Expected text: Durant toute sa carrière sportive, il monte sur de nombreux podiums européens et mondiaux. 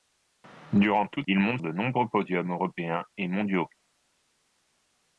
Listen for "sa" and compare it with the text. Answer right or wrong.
wrong